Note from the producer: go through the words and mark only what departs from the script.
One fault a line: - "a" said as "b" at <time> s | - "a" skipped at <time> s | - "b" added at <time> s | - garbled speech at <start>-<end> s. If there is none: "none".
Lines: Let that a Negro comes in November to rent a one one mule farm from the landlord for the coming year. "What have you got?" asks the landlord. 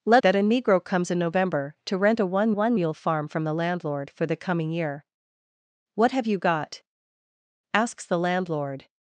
none